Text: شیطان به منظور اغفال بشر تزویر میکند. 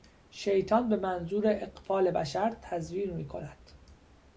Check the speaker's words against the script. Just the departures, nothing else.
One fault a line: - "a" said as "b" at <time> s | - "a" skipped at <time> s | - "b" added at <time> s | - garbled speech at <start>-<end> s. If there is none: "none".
none